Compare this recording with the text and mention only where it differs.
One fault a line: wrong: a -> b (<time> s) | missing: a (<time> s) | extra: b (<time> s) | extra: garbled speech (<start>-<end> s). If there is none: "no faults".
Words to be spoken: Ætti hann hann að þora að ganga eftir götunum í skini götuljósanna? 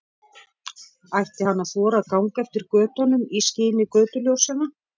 missing: hann (1.6 s)